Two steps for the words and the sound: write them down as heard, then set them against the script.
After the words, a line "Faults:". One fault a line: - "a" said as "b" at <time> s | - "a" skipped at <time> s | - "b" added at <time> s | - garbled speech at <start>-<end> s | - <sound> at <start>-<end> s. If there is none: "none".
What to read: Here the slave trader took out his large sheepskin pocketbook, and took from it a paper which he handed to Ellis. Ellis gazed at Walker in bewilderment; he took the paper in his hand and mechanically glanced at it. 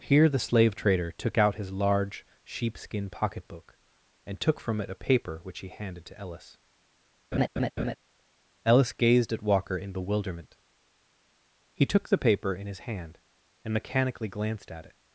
Here the slave trader took out his large sheepskin pocketbook, and took from it a paper which he handed to Ellis. Ellis gazed at Walker in bewilderment; he took the paper in his hand and mechanically glanced at it.
Faults:
- laugh at 7.3-8.0 s